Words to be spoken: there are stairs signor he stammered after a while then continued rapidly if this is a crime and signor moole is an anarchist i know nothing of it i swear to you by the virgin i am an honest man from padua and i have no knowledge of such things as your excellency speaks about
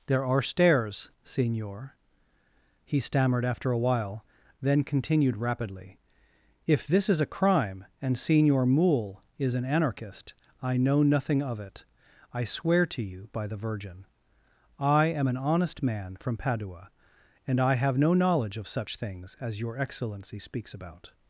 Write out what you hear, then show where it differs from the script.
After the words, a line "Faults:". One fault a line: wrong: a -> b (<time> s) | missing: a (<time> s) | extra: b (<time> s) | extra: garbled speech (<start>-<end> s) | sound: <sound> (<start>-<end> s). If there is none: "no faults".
there are stairs signor he stammered after a while then continued rapidly if this is a crime and signor moole is an anarchist i know nothing of it i swear to you by the virgin i am an honest man from padua and i have no knowledge of such things as your excellency speaks about
Faults:
no faults